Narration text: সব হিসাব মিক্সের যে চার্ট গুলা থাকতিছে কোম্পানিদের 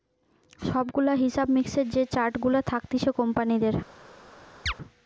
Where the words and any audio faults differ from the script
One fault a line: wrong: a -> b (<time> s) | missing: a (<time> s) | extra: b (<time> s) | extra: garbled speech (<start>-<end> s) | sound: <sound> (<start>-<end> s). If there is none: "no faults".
extra: গুলা (0.9 s)
sound: chirp (4.7-4.7 s)